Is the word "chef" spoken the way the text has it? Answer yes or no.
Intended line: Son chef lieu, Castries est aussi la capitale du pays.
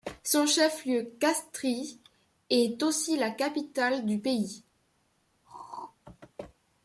yes